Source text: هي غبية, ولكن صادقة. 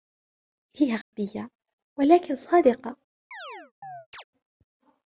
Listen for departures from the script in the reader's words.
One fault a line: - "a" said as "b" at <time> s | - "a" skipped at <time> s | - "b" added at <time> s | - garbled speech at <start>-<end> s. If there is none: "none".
none